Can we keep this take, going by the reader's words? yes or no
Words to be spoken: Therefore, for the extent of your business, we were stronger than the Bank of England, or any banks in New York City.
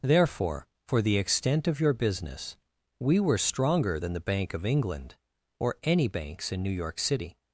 yes